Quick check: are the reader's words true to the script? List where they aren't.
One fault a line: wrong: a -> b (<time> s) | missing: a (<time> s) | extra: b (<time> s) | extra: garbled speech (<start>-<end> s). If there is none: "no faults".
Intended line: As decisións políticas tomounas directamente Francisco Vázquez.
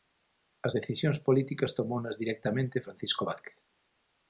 no faults